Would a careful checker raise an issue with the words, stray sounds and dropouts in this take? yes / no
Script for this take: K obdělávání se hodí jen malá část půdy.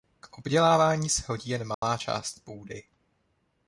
yes